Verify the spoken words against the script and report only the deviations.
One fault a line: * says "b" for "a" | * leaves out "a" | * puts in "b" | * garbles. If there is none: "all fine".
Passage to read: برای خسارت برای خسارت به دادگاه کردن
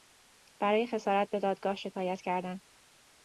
* leaves out "برای خسارت"
* puts in "شکایت"